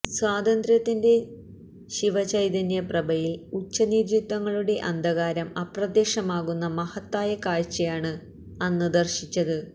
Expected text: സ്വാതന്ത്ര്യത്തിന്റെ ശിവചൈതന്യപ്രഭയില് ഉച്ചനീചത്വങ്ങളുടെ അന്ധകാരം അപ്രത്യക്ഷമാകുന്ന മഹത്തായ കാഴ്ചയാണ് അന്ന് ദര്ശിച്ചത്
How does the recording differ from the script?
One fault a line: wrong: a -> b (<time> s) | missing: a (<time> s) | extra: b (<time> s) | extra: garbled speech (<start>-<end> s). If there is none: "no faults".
no faults